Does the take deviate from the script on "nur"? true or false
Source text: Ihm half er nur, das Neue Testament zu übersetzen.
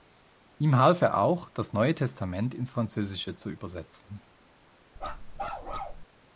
true